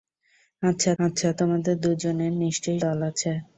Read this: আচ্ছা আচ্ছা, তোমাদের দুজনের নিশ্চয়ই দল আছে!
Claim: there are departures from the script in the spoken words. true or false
false